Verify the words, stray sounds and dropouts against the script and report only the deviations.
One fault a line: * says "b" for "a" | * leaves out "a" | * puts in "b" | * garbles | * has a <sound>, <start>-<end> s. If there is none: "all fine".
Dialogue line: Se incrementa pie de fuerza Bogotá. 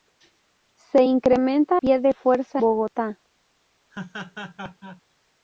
* has a laugh, 3.9-5.0 s